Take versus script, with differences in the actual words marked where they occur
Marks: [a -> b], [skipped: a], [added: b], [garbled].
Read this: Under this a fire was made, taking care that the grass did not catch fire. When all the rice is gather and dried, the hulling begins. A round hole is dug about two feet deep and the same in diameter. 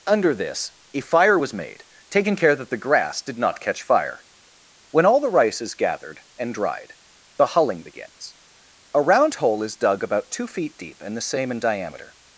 Under this a fire was made, taking care that the grass did not catch fire. When all the rice is [gather -> gathered] and dried, the hulling begins. A round hole is dug about two feet deep and the same in diameter.